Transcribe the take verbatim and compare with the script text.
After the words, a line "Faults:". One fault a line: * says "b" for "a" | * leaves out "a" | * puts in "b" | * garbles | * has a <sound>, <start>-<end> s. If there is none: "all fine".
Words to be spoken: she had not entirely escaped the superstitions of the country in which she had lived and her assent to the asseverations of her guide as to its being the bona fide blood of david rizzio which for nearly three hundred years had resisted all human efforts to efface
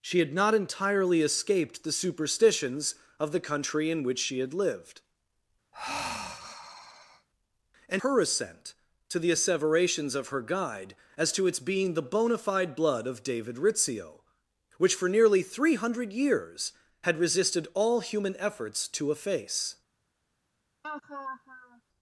she had not entirely escaped the superstitions of the country in which she had lived and her assent to the asseverations of her guide as to its being the bona fide blood of david rizzio which for nearly three hundred years had resisted all human efforts to efface
Faults:
* has a sigh, 5.7-7.3 s
* has a laugh, 20.8-21.8 s